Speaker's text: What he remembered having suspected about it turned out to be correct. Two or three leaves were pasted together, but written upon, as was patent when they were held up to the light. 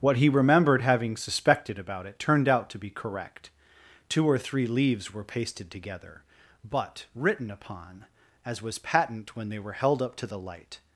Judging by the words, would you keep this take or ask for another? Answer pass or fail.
pass